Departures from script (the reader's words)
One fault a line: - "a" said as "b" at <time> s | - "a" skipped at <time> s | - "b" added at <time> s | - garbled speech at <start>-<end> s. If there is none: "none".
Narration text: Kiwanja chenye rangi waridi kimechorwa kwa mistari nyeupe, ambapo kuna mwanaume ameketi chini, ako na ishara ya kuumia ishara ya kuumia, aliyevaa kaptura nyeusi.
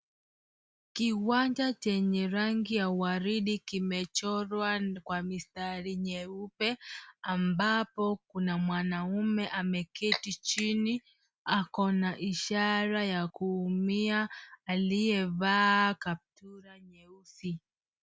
- "ya" added at 2.8 s
- "ishara ya kuumia" skipped at 14.3 s